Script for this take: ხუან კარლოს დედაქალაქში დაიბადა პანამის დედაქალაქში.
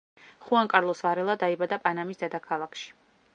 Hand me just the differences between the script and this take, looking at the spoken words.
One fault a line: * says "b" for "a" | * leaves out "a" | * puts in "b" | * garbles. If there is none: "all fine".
* says "ვარელა" for "დედაქალაქში"